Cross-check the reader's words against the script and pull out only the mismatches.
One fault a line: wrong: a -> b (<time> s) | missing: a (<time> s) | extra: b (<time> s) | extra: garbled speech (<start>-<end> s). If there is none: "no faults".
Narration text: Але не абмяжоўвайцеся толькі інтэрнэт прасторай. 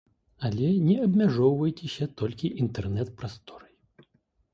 no faults